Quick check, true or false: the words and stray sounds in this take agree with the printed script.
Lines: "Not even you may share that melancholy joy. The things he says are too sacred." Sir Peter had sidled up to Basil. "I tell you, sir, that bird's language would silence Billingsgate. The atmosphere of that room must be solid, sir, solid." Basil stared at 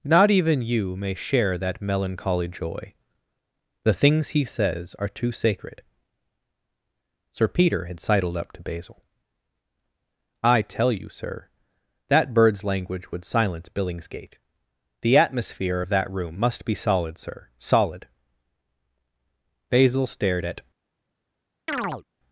false